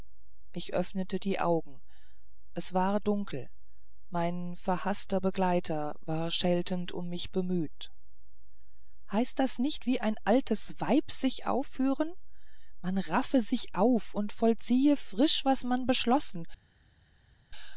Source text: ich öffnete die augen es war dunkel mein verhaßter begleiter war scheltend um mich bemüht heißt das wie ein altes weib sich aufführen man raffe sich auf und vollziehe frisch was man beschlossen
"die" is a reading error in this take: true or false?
false